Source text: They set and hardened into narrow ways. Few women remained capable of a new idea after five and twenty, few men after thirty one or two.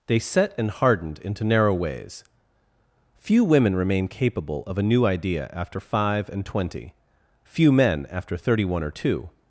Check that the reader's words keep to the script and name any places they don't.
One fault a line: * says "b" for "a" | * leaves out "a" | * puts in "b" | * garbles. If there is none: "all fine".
* says "remain" for "remained"